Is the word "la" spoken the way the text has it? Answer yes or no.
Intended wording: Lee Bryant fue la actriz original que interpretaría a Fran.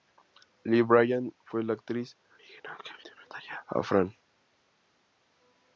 yes